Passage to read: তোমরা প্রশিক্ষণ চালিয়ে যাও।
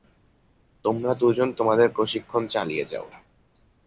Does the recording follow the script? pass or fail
fail